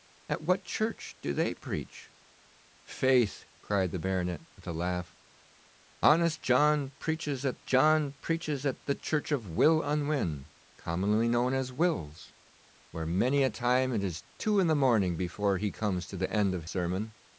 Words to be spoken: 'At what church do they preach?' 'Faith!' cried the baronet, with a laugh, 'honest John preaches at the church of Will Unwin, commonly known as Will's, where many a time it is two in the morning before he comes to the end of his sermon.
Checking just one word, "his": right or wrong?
wrong